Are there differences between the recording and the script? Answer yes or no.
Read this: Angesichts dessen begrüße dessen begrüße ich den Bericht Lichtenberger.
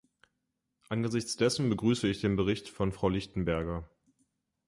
yes